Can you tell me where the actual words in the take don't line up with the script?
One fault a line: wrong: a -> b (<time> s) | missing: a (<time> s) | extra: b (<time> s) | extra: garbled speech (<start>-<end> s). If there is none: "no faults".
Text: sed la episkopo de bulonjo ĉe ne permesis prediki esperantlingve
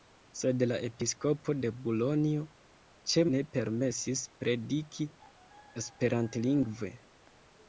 no faults